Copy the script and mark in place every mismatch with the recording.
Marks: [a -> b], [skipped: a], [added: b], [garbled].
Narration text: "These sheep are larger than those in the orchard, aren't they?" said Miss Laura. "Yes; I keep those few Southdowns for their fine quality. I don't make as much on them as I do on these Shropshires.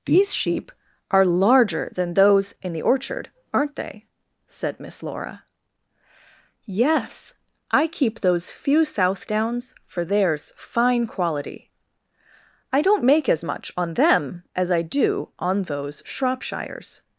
"These sheep are larger than those in the orchard, aren't they?" said Miss Laura. "Yes; I keep those few Southdowns for [their -> theirs] fine quality. I don't make as much on them as I do on [these -> those] Shropshires.